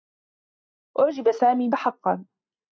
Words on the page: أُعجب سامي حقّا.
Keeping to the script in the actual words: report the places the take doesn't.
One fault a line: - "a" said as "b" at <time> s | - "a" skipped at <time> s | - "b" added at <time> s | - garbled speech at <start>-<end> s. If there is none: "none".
none